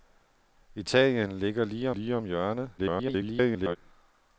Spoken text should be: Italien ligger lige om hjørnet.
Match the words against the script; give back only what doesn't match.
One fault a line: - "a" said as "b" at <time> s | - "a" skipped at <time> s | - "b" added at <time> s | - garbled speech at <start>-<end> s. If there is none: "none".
- "lige" added at 1.9 s
- garbled speech at 2.8-3.8 s